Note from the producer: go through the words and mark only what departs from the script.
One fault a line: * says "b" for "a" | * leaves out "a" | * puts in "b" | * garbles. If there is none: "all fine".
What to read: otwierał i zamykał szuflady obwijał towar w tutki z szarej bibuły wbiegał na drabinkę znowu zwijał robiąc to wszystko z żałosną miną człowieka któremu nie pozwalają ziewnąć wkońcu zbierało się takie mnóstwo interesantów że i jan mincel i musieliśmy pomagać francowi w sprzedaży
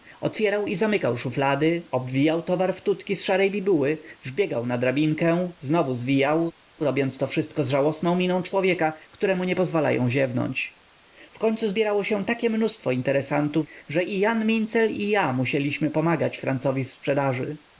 * puts in "ja"